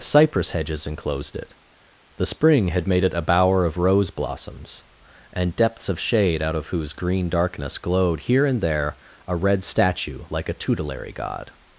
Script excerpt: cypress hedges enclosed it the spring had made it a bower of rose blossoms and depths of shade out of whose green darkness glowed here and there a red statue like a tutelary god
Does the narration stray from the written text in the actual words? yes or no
no